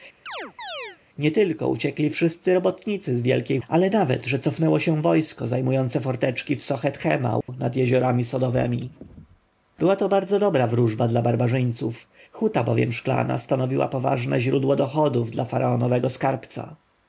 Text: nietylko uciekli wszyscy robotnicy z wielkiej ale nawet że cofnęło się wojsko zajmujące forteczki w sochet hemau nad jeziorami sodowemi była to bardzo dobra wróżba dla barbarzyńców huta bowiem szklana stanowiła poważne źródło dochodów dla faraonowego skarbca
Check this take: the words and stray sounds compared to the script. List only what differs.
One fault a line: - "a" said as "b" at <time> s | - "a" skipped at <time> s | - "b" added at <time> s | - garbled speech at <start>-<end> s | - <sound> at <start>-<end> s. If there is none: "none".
- chirp at 0.3-1.0 s
- dropout at 7.4-7.5 s